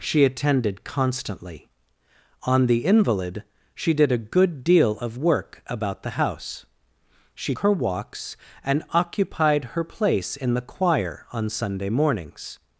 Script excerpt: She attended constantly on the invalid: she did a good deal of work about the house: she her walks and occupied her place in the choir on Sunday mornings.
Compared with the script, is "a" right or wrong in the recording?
right